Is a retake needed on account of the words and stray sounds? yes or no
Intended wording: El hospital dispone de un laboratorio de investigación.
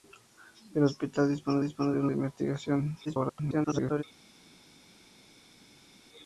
yes